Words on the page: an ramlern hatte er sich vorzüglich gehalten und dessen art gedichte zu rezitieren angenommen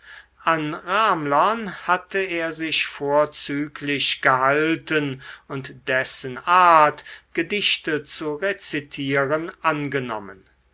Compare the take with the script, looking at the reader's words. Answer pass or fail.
pass